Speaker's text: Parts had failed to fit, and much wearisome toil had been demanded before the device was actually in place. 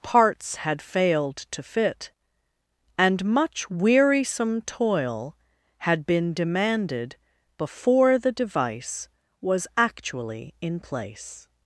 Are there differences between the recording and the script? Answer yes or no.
no